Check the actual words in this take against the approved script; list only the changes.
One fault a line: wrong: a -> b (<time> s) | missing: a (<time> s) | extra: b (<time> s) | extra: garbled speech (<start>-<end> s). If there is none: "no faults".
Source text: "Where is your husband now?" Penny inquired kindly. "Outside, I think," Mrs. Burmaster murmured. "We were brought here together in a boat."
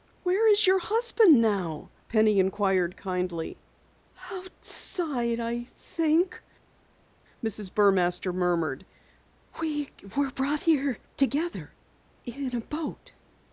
no faults